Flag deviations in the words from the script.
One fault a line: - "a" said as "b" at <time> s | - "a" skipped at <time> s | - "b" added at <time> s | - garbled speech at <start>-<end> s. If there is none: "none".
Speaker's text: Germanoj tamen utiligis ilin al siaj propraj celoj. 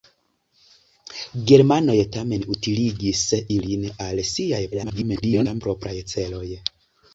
- garbled speech at 4.7-5.6 s